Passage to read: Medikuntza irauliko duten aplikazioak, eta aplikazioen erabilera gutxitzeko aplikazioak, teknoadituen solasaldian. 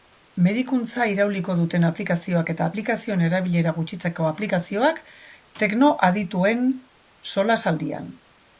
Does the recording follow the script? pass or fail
pass